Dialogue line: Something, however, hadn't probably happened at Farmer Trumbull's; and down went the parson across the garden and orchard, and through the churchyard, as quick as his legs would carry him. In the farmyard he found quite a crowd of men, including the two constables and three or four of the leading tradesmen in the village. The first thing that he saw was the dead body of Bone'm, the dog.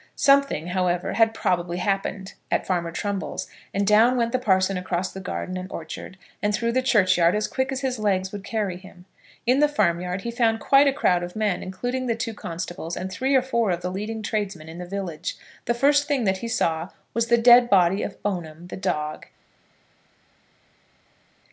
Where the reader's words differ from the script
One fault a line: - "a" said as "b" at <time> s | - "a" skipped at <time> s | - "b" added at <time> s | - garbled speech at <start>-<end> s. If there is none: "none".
- "hadn't" said as "had" at 1.1 s